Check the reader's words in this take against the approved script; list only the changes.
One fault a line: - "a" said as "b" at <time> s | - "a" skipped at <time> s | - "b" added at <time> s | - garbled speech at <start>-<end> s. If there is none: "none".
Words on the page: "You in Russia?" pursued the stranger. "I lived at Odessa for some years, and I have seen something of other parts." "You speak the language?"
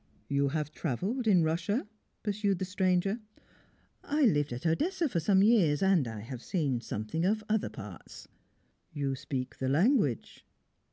- "have travelled" added at 0.5 s